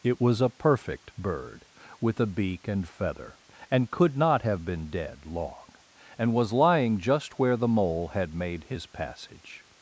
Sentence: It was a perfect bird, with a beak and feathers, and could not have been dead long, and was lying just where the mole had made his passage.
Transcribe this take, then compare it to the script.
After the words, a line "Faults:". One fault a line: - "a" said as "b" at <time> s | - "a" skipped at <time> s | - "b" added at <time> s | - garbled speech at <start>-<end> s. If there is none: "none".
It was a perfect bird, with a beak and feather, and could not have been dead long, and was lying just where the mole had made his passage.
Faults:
- "feathers" said as "feather" at 2.9 s